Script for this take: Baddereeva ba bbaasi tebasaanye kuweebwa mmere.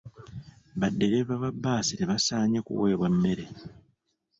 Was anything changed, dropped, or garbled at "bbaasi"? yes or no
no